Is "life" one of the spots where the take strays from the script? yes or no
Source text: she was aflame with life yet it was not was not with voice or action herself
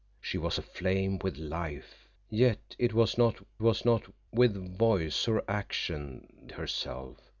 no